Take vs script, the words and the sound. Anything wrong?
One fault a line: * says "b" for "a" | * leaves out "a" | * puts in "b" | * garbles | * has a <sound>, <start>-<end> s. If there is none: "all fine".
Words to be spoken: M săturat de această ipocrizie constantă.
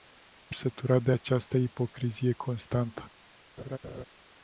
* has a laugh, 3.6-4.0 s